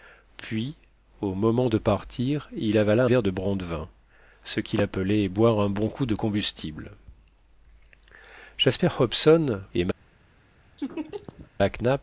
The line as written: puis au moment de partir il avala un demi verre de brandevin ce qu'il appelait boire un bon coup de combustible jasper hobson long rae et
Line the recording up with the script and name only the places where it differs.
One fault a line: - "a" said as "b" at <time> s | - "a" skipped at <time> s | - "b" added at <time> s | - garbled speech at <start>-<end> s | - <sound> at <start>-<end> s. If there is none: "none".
- "un demi" skipped at 3.0 s
- "long rae" skipped at 9.6 s
- laugh at 10.8-11.5 s